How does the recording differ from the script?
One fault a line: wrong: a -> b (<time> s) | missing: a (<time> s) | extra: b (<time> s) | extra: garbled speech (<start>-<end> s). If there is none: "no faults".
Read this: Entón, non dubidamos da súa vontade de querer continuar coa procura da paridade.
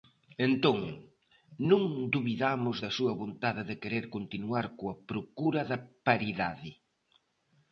no faults